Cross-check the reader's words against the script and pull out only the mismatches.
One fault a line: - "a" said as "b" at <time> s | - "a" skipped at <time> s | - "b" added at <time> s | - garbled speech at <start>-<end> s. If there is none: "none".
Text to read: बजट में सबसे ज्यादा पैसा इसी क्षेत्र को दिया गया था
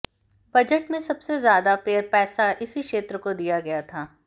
none